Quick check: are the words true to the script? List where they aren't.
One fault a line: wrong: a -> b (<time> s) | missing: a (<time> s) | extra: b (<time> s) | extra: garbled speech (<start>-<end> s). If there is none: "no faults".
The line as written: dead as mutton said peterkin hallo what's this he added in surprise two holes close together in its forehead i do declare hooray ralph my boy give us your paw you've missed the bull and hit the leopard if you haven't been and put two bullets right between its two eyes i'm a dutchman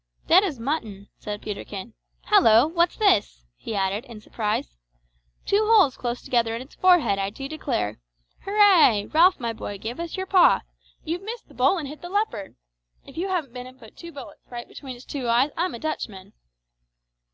no faults